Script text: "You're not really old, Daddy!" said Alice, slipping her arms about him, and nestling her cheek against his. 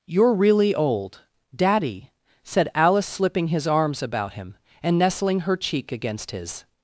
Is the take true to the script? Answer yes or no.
no